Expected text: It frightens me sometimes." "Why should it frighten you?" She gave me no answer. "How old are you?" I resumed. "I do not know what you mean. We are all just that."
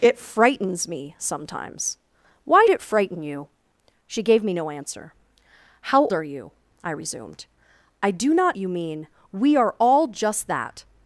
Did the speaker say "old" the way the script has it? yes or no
no